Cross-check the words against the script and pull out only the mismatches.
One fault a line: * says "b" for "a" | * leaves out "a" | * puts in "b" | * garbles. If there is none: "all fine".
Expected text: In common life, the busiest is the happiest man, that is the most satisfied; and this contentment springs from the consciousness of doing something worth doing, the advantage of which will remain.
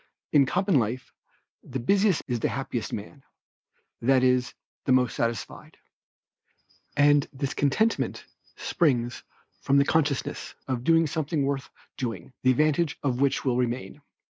all fine